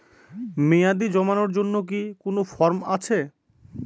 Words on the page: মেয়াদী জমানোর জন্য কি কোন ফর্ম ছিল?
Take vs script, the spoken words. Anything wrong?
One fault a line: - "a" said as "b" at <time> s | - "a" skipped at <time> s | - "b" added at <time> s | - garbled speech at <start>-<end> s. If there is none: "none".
- "ছিল" said as "আছে" at 3.0 s